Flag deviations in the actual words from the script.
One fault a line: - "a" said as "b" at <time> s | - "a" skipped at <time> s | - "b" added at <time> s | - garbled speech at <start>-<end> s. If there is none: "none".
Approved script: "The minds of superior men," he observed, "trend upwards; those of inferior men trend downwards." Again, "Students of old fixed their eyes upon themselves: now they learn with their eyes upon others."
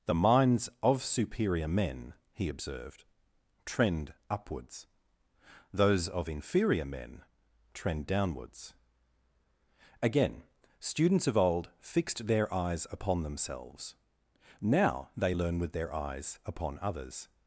none